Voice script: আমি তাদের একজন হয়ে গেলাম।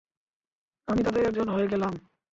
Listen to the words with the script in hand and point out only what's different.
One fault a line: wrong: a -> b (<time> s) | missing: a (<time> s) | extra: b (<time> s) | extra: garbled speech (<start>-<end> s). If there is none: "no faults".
no faults